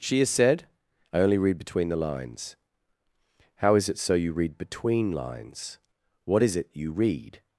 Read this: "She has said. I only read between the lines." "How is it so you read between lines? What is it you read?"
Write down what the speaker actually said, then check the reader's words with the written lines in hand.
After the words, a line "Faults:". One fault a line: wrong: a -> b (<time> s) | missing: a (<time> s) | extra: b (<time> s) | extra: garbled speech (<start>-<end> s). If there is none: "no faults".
"She has said. I only read between the lines." "How is it so you read between lines? What is it you read?"
Faults:
no faults